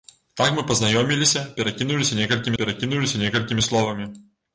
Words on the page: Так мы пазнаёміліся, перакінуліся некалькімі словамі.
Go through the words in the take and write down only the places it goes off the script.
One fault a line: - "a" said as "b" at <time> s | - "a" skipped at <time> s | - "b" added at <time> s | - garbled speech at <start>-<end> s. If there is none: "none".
- "перакінуліся некалькімі" added at 2.6 s